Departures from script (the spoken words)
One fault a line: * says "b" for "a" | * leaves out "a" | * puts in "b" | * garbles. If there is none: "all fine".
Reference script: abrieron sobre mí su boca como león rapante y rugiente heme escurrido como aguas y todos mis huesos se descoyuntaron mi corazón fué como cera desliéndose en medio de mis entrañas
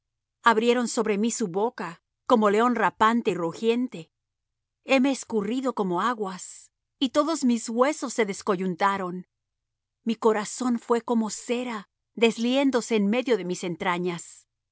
all fine